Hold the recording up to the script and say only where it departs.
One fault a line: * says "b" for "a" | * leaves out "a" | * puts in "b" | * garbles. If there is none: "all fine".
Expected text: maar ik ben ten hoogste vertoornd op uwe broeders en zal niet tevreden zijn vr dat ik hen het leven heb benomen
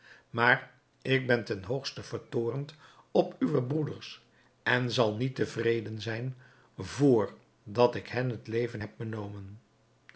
all fine